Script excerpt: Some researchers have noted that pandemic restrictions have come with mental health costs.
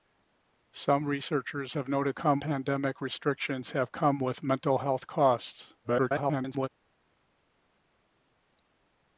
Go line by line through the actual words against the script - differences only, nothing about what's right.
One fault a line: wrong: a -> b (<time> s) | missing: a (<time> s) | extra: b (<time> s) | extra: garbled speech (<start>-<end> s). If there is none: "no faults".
wrong: that -> come (2.1 s)
extra: garbled speech (5.8-6.7 s)